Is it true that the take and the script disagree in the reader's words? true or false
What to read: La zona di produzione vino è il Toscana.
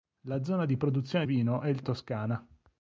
false